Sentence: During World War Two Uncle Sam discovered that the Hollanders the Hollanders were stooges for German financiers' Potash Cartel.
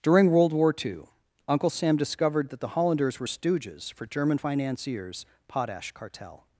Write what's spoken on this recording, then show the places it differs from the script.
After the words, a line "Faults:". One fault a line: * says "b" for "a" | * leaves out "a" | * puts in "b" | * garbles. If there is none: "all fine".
During World War Two Uncle Sam discovered that the Hollanders were stooges for German financiers' Potash Cartel.
Faults:
* leaves out "the Hollanders"